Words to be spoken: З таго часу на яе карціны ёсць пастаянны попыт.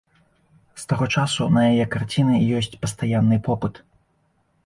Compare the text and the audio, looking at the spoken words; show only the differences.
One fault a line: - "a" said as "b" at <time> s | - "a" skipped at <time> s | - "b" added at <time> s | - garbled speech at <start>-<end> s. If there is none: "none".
none